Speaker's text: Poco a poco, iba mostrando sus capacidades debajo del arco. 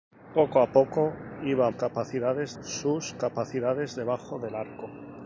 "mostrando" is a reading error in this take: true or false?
true